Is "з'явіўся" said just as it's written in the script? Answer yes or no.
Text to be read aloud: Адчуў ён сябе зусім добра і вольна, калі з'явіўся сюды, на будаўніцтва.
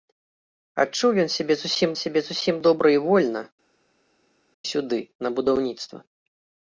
no